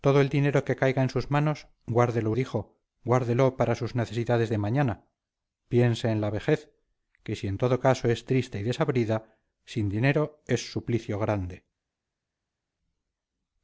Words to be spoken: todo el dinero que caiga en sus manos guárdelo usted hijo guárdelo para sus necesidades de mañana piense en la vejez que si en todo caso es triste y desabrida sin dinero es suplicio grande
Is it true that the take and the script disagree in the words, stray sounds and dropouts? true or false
true